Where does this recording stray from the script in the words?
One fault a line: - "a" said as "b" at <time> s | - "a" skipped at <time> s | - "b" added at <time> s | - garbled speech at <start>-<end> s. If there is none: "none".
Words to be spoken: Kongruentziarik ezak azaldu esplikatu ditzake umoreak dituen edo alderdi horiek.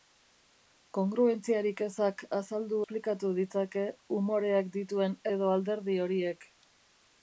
none